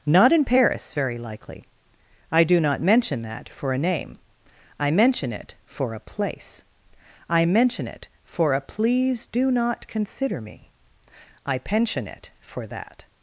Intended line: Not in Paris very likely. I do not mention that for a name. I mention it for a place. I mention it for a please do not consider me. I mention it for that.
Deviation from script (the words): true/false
true